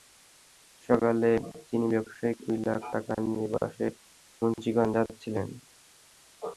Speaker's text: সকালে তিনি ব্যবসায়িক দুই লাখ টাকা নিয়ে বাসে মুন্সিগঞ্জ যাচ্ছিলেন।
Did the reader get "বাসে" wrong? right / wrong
right